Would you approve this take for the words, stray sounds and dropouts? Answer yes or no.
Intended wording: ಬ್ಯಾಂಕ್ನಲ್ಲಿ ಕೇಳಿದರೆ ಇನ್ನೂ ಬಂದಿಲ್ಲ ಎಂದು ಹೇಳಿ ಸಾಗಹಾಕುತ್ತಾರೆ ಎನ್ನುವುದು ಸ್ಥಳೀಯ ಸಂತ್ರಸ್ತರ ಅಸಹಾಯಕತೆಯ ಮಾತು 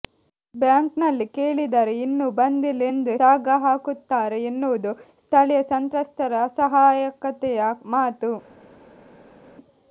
no